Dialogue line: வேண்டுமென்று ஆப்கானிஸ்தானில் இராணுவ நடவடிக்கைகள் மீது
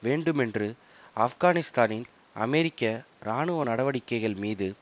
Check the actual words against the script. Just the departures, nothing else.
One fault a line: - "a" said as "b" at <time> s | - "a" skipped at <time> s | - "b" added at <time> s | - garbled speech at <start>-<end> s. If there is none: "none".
- "அமெரிக்க" added at 2.4 s